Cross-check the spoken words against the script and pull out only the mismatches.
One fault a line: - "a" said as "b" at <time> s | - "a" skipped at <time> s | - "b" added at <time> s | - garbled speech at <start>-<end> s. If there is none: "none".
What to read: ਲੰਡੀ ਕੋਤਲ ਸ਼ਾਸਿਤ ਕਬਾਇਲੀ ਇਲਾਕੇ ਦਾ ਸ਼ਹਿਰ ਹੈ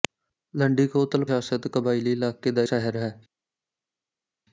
none